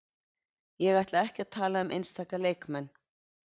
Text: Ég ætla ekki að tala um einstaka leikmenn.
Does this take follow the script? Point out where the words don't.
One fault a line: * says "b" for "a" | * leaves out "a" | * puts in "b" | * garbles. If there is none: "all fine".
all fine